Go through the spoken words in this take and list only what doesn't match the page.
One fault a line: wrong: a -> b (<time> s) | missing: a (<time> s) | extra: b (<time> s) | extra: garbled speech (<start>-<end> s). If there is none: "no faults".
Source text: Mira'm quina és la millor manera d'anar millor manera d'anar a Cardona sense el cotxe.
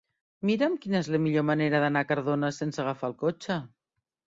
missing: millor manera d'anar (2.0 s)
extra: agafar (2.9 s)